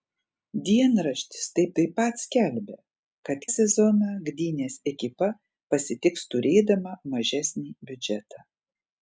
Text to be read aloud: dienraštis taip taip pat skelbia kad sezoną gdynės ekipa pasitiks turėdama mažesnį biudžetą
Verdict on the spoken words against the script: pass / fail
pass